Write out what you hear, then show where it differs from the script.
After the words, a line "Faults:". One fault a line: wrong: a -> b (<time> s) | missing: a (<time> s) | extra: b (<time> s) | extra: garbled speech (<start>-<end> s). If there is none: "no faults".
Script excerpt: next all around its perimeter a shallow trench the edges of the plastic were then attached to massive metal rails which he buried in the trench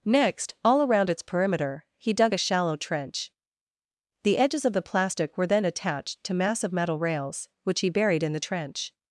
next all around its perimeter he dug a shallow trench the edges of the plastic were then attached to massive metal rails which he buried in the trench
Faults:
extra: he dug (2.0 s)